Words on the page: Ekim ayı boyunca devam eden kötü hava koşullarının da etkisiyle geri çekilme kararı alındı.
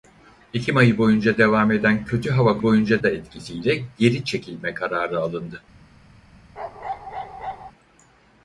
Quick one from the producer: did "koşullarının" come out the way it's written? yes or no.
no